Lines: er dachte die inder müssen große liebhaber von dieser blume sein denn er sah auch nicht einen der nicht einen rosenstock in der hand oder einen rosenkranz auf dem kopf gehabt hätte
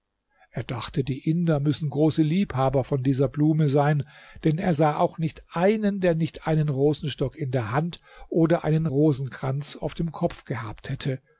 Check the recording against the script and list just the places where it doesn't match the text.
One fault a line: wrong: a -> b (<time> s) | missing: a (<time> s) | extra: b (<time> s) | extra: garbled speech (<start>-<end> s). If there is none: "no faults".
no faults